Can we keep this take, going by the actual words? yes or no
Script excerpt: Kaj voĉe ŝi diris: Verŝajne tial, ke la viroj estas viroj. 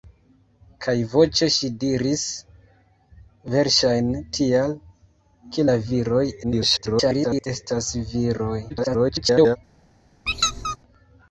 no